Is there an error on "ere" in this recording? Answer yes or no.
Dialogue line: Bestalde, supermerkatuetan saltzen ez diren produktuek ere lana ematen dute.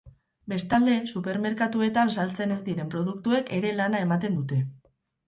no